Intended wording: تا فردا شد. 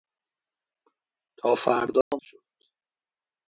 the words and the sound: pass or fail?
fail